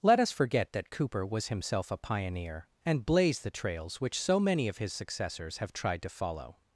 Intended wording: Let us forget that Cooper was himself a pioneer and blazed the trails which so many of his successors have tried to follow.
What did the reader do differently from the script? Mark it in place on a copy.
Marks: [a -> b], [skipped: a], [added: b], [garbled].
Let us forget that Cooper was himself a pioneer and blazed the trails which so many of his successors have tried to follow.